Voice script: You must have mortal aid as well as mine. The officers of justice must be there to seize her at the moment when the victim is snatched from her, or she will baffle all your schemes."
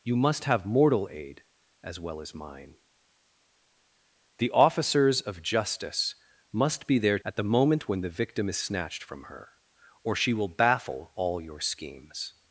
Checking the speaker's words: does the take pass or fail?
fail